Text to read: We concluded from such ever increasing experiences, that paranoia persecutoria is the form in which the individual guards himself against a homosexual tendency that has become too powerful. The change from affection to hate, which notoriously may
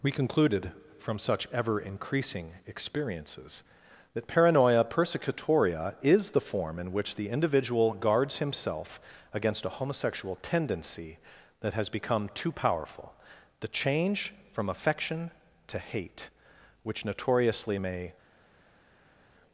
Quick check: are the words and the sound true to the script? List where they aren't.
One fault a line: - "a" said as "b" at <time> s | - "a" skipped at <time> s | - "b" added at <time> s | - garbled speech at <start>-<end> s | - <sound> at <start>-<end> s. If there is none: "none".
none